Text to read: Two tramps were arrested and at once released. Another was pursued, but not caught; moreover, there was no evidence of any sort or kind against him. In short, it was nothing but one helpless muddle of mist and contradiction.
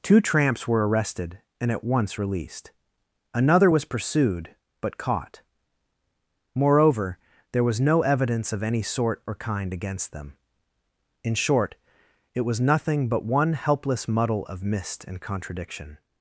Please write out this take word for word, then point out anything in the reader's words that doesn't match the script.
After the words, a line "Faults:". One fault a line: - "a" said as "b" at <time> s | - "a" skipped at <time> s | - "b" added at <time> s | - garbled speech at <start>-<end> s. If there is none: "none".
Two tramps were arrested and at once released. Another was pursued, but caught; moreover, there was no evidence of any sort or kind against them. In short, it was nothing but one helpless muddle of mist and contradiction.
Faults:
- "not" skipped at 5.0 s
- "him" said as "them" at 10.1 s